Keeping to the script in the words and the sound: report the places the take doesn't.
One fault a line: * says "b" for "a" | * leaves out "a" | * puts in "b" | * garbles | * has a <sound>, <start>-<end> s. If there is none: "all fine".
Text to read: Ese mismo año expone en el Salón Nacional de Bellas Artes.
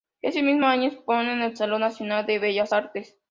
all fine